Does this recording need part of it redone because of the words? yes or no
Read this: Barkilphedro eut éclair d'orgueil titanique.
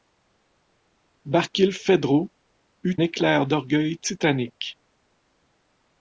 no